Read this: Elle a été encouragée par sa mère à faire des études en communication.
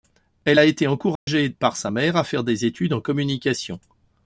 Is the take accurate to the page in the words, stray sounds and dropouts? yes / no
no